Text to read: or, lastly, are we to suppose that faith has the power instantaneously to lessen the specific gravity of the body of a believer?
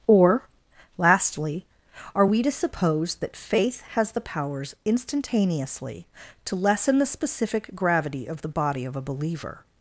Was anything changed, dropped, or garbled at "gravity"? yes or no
no